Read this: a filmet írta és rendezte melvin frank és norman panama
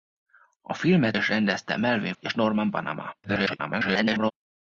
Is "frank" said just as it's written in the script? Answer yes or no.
no